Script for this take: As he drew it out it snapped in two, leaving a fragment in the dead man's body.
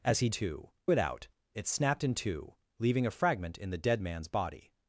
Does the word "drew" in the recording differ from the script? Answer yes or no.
yes